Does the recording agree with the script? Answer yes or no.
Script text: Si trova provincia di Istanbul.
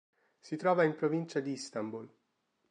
no